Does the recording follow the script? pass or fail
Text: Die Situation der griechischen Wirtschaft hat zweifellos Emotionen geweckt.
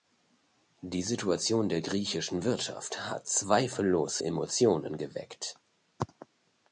pass